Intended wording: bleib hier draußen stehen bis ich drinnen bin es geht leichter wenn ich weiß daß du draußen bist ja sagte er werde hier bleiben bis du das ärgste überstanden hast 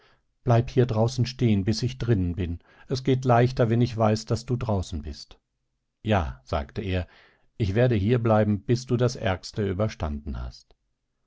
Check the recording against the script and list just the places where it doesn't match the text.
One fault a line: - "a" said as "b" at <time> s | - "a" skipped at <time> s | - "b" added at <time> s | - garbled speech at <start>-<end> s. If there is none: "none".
- "ich" added at 7.6 s